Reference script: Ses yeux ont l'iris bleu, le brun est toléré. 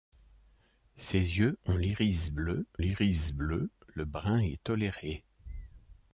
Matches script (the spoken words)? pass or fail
fail